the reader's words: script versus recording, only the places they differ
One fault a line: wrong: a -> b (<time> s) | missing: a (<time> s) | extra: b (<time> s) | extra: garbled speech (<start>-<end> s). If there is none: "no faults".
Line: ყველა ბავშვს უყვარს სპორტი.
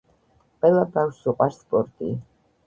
no faults